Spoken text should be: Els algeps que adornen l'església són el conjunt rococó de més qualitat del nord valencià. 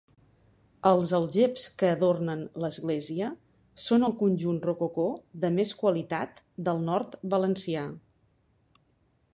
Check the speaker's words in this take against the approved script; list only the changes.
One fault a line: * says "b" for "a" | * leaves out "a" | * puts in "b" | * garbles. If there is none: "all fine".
all fine